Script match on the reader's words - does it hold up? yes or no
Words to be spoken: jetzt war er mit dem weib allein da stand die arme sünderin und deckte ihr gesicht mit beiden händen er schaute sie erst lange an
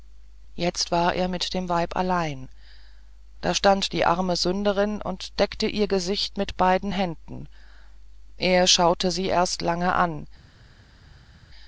yes